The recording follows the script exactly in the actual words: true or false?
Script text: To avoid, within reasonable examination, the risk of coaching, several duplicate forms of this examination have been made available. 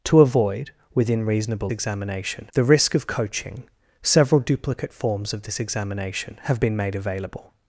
true